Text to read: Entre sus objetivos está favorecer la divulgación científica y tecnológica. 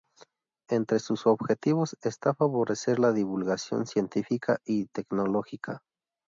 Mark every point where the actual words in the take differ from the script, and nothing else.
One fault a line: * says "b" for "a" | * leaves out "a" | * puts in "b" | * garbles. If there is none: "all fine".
all fine